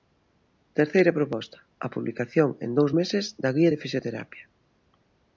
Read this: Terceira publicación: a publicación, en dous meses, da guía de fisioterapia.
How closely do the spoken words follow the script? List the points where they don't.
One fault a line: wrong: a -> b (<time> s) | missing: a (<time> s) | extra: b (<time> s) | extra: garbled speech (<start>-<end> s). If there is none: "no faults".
wrong: publicación -> proposta (1.2 s)